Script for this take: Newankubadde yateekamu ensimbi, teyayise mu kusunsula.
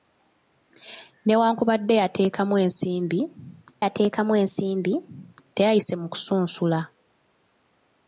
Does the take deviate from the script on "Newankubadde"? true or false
false